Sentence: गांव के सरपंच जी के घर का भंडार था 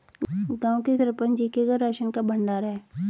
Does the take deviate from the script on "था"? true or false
true